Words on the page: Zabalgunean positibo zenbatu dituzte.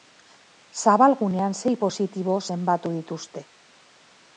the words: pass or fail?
fail